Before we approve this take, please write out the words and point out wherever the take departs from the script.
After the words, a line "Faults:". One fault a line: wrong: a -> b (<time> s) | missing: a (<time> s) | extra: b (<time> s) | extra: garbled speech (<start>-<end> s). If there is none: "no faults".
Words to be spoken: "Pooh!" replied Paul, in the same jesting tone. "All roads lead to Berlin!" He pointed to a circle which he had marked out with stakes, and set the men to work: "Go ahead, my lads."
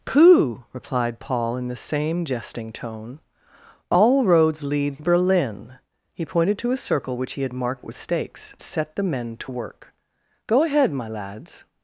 "Pooh!" replied Paul, in the same jesting tone. "All roads lead Berlin!" He pointed to a circle which he had marked with stakes, set the men to work: "Go ahead, my lads."
Faults:
missing: to (5.0 s)
missing: out (7.9 s)
missing: and (8.5 s)